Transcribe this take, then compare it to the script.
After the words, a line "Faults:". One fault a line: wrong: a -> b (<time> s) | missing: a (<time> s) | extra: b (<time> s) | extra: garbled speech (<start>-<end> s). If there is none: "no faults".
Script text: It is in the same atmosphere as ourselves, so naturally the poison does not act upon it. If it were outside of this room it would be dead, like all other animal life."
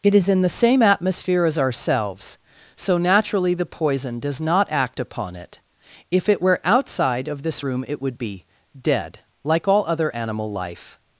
It is in the same atmosphere as ourselves, so naturally the poison does not act upon it. If it were outside of this room it would be dead, like all other animal life."
Faults:
no faults